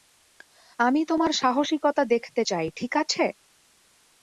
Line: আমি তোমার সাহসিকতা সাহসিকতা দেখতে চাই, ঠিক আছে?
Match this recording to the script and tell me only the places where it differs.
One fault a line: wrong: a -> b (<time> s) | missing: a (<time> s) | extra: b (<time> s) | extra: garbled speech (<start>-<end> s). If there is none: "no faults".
missing: সাহসিকতা (2.0 s)